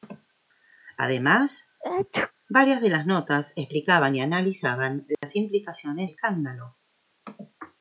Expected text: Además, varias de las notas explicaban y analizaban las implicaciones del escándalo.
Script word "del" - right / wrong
wrong